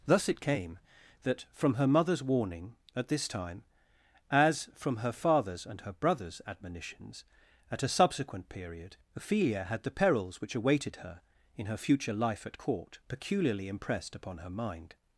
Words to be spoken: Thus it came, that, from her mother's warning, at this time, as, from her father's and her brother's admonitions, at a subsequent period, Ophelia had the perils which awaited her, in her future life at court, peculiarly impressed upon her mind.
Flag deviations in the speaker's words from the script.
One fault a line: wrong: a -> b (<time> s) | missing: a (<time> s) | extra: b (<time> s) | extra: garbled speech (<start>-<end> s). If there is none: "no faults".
no faults